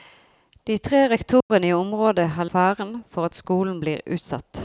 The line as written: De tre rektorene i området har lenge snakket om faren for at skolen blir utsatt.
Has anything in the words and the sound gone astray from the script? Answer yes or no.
yes